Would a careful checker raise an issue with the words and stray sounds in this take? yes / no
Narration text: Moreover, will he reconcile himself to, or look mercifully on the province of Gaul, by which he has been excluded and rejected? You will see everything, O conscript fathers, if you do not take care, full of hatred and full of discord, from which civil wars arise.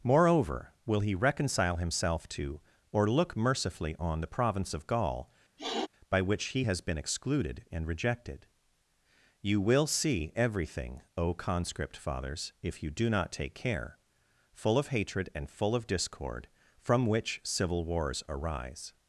yes